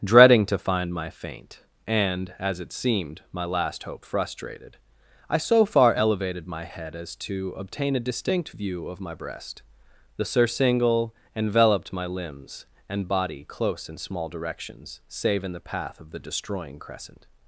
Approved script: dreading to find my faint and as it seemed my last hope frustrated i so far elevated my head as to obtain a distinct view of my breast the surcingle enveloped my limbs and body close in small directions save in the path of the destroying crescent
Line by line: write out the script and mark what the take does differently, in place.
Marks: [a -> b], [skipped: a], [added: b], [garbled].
dreading to find my faint and as it seemed my last hope frustrated i so far elevated my head as to obtain a distinct view of my breast the surcingle enveloped my limbs and body close in small directions save in the path of the destroying crescent